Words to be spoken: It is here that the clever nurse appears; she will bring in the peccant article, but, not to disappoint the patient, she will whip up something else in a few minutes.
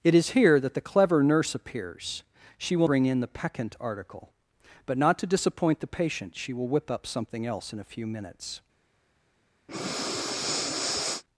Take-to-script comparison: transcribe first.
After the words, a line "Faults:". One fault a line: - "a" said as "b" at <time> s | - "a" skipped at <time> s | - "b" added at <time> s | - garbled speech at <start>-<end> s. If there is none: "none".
It is here that the clever nurse appears; she will bring in the peccant article, but, not to disappoint the patient, she will whip up something else in a few minutes.
Faults:
none